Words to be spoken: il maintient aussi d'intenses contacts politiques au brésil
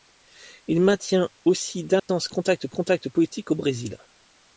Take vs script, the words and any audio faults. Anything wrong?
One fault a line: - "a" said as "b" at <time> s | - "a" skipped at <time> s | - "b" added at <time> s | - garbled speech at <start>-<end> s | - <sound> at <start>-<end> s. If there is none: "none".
- dropout at 2.0-2.1 s
- "contacts" added at 2.7 s